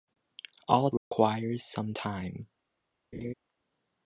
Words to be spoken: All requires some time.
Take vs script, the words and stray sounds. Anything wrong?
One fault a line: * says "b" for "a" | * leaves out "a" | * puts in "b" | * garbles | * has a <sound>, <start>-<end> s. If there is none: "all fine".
* has a dropout, 1.0-1.1 s
* has a laugh, 3.1-3.3 s